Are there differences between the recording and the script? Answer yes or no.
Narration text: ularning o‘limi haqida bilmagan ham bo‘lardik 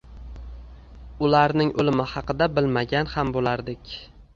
no